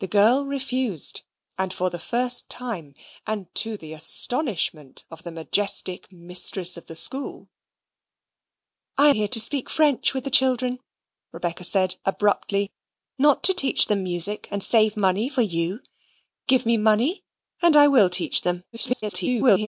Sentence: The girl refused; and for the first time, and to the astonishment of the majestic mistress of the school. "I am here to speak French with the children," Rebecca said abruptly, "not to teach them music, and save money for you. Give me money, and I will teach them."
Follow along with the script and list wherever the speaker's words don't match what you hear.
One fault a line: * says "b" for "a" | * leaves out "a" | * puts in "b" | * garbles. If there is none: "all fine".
* leaves out "am"
* garbles